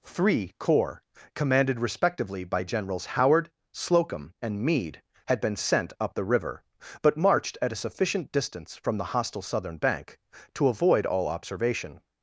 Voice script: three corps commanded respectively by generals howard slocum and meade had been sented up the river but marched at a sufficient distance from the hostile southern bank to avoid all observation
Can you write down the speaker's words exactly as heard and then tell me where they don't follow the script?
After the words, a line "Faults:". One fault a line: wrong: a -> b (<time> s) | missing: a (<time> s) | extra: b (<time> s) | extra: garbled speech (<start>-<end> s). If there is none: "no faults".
three corps commanded respectively by generals howard slocum and meade had been sent up the river but marched at a sufficient distance from the hostile southern bank to avoid all observation
Faults:
wrong: sented -> sent (5.5 s)